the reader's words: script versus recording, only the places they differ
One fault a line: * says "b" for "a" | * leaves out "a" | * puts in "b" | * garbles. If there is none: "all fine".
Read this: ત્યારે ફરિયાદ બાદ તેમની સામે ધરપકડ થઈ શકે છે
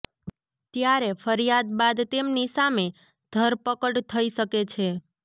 all fine